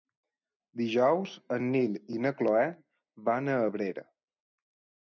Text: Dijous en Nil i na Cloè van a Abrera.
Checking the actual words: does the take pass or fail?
pass